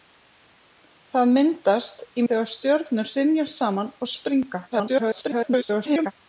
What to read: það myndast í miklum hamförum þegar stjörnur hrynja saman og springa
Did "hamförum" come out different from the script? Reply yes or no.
yes